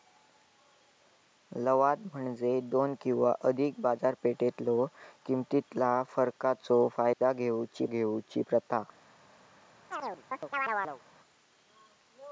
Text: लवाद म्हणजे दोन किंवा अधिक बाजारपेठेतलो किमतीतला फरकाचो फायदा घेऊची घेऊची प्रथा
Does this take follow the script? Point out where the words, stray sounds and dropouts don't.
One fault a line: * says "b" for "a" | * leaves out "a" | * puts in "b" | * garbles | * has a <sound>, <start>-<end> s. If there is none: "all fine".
* has a dropout, 7.1-7.2 s
* has a chirp, 9.9-11.0 s